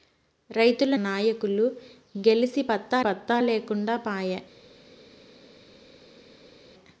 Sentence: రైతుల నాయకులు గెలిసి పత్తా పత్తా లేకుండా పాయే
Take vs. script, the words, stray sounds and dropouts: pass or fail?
pass